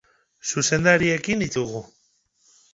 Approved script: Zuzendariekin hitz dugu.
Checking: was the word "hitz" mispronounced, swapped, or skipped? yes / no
no